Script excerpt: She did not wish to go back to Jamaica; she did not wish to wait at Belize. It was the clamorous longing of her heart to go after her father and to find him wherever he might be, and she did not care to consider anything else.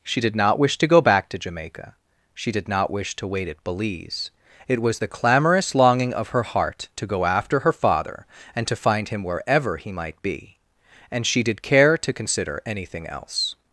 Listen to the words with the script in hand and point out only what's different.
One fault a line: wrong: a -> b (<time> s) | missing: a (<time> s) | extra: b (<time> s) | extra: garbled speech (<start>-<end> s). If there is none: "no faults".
missing: not (11.6 s)